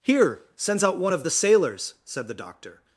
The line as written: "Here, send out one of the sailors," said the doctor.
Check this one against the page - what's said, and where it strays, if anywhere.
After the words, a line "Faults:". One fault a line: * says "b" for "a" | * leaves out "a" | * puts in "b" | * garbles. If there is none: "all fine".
"Here, sends out one of the sailors," said the doctor.
Faults:
* says "sends" for "send"